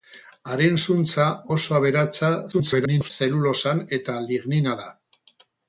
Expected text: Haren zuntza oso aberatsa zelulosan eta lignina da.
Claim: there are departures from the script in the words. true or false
true